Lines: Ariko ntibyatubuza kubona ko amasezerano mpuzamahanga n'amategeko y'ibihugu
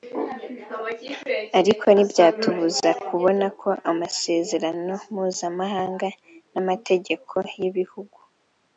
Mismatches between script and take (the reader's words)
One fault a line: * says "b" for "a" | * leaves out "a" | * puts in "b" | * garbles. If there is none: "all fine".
all fine